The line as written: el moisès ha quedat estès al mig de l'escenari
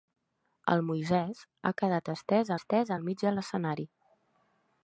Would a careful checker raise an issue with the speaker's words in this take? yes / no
yes